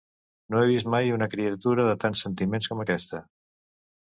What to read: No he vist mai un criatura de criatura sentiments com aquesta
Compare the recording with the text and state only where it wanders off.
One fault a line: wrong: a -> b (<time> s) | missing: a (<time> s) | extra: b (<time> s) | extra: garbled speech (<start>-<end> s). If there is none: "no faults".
wrong: un -> una (1.2 s)
wrong: criatura -> tants (2.0 s)